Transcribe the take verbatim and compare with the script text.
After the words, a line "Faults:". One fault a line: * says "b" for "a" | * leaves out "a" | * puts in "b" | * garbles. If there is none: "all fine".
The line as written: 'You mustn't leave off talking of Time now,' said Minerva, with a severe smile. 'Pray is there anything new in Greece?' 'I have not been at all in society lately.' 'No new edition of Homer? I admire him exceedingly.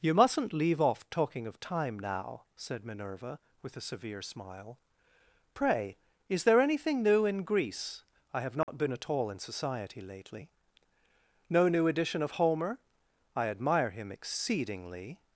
'You mustn't leave off talking of Time now,' said Minerva, with a severe smile. 'Pray is there anything new in Greece?' 'I have not been at all in society lately.' 'No new edition of Homer? I admire him exceedingly.
Faults:
all fine